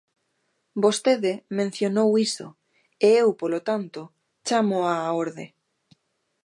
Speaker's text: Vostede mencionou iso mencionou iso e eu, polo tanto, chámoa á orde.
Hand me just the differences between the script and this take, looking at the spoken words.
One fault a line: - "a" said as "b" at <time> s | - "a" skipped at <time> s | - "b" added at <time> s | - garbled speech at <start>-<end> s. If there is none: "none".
- "mencionou iso" skipped at 2.5 s